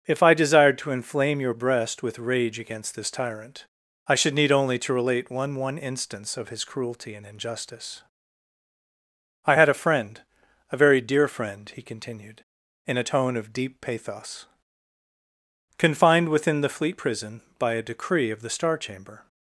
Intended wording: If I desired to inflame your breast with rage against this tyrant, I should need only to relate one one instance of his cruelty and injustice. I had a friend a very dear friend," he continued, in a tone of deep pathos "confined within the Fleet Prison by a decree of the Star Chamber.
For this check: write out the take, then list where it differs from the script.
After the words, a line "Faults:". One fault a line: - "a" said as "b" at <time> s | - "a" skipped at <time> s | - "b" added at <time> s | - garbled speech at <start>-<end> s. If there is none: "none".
If I desired to inflame your breast with rage against this tyrant, I should need only to relate one one instance of his cruelty and injustice. I had a friend a very dear friend," he continued, in a tone of deep pathos "confined within the Fleet Prison by a decree of the Star Chamber.
Faults:
none